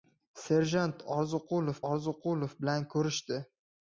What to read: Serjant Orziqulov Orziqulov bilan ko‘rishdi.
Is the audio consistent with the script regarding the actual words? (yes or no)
yes